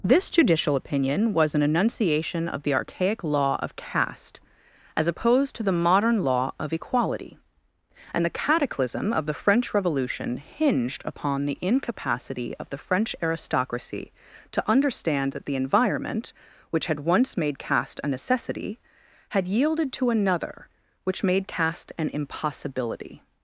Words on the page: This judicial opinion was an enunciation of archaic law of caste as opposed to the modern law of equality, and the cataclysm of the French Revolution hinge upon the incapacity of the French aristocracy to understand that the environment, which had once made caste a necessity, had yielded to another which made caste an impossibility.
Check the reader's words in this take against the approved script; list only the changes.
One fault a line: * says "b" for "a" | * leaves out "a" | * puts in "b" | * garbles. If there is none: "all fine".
* puts in "the"
* says "hinged" for "hinge"